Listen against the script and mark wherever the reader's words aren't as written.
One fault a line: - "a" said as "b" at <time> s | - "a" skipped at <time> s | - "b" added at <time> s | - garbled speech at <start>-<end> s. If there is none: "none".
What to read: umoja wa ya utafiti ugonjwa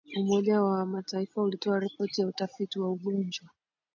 - "mataifa ulitoa ripoti" added at 0.8 s
- "wa" added at 2.8 s